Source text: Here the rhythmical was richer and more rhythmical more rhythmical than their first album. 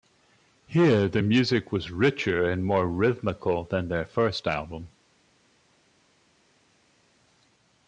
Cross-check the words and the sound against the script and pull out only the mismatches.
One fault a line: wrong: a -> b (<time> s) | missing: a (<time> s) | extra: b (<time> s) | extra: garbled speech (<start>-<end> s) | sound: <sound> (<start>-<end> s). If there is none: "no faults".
wrong: rhythmical -> music (1.2 s)
missing: more rhythmical (3.6 s)